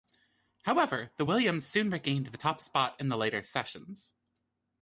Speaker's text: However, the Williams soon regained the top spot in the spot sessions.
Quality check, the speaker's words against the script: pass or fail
fail